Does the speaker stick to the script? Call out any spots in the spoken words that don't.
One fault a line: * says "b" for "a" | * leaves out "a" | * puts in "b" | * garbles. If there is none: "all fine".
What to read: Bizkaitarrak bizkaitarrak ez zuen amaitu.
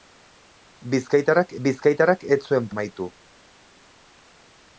all fine